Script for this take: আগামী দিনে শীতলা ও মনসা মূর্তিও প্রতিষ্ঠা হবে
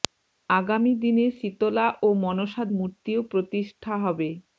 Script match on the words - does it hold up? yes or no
yes